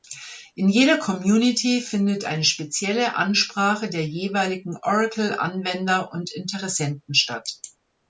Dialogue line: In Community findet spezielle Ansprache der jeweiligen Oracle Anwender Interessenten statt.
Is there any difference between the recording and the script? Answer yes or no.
yes